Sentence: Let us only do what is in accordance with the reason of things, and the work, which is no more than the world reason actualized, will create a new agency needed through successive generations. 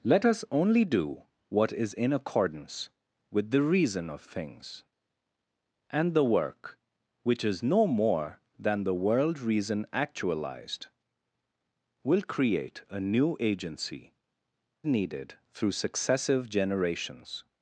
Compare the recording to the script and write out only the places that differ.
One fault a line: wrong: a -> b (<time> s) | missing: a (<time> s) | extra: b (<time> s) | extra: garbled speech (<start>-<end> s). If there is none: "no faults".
no faults